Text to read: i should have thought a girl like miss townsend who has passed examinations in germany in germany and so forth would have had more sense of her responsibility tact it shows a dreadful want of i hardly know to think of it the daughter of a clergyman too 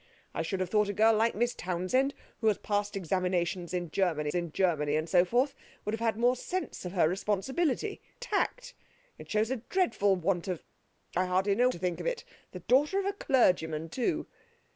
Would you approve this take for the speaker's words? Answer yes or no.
yes